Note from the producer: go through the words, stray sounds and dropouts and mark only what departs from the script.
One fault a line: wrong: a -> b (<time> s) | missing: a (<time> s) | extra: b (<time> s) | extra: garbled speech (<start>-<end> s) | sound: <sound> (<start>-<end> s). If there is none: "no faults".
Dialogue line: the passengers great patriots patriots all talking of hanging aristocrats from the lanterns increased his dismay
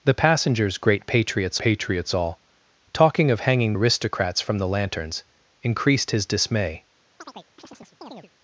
sound: chirp (7.2-8.3 s)